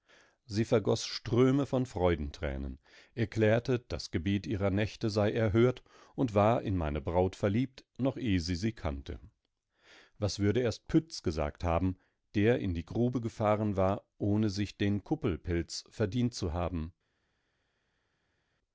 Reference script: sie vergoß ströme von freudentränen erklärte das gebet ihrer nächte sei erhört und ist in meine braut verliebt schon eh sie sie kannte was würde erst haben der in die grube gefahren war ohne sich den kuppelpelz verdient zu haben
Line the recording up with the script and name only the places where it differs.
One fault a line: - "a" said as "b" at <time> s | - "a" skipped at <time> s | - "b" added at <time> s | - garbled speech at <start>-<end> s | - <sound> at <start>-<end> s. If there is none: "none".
- "ist" said as "war" at 6.3 s
- "schon" said as "noch" at 8.0 s
- "pütz gesagt" added at 10.9 s